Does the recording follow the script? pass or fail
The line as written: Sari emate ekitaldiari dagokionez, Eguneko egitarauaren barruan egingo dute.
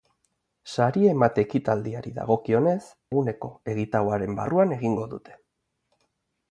pass